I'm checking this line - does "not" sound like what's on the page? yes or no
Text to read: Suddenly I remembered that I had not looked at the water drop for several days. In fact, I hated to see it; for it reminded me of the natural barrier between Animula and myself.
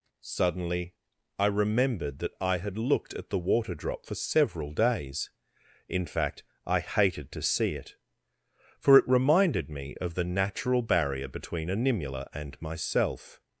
no